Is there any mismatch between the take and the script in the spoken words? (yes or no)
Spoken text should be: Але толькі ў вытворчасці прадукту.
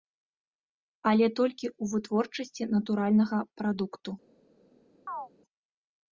yes